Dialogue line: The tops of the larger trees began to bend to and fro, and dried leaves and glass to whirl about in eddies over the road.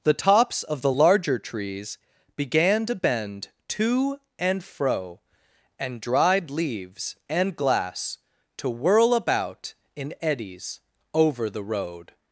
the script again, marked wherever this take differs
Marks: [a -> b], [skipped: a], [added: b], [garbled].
The tops of the larger trees began to bend to and fro, and dried leaves and glass to whirl about in eddies over the road.